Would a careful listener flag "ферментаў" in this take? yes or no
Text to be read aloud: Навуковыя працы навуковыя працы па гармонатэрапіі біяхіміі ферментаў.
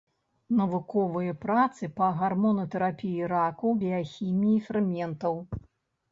no